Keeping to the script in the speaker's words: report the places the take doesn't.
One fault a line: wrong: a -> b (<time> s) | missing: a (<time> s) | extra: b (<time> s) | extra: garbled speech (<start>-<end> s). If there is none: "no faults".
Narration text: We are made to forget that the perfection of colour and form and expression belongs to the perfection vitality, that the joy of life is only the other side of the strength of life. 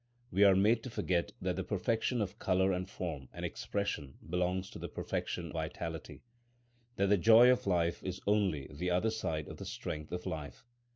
no faults